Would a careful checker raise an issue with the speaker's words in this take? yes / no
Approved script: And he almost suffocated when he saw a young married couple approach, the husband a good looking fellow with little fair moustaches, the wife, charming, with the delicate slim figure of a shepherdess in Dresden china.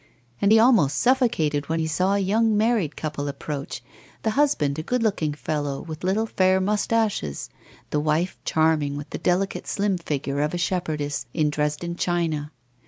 no